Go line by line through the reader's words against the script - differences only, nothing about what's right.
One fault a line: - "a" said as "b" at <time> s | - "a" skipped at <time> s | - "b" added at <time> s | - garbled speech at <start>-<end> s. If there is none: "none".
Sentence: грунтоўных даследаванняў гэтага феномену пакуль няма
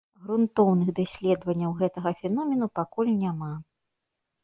none